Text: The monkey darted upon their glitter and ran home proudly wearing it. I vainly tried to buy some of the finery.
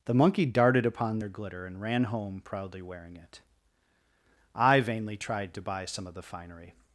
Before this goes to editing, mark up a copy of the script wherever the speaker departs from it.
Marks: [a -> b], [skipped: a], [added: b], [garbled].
The monkey darted upon their glitter and ran home proudly wearing it. I vainly tried to buy some of the finery.